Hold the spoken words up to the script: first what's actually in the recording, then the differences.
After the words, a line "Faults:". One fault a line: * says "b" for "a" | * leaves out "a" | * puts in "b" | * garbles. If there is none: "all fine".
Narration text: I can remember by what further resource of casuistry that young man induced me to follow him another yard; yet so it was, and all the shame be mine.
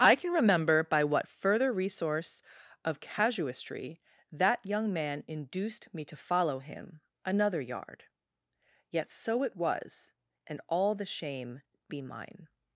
I can remember by what further resource of casuistry that young man induced me to follow him another yard; yet so it was, and all the shame be mine.
Faults:
all fine